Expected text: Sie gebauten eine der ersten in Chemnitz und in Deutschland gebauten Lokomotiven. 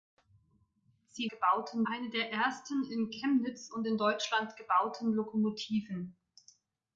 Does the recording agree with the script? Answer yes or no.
yes